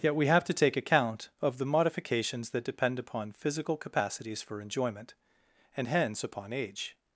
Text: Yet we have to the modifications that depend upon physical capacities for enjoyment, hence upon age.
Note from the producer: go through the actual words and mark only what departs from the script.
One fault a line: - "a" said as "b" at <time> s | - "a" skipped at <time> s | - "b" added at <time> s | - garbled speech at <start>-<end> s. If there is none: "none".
- "take account of" added at 0.5 s
- "and" added at 5.8 s